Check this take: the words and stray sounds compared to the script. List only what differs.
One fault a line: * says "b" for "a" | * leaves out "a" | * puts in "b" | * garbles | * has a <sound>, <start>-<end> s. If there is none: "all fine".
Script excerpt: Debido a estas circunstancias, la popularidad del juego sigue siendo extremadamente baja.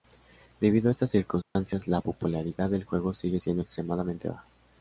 * has a dropout, 1.4-1.6 s